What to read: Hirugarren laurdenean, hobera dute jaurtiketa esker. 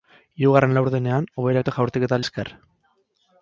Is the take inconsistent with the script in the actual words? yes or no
no